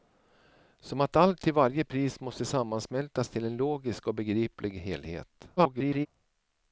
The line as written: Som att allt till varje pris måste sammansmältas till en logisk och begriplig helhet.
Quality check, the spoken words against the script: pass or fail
fail